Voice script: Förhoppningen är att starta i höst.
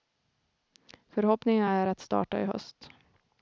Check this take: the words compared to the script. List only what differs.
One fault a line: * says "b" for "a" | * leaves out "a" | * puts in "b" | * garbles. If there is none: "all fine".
all fine